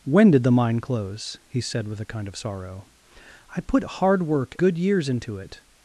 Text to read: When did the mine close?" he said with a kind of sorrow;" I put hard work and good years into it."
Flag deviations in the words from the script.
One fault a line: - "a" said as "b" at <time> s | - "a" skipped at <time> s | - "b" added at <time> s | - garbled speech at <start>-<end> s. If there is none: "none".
- "and" skipped at 4.5 s